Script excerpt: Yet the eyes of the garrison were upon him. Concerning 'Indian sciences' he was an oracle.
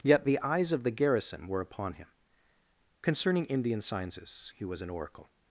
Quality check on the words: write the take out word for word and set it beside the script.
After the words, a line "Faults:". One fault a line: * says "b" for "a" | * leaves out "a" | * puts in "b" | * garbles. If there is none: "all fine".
Yet the eyes of the garrison were upon him. Concerning 'Indian sciences' he was an oracle.
Faults:
all fine